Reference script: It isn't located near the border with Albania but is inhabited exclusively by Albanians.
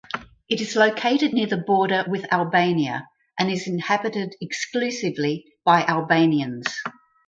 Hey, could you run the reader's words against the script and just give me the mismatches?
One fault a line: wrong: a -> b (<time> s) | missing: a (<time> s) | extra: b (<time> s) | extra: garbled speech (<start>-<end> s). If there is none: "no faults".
wrong: isn't -> is (0.6 s)
wrong: but -> and (3.4 s)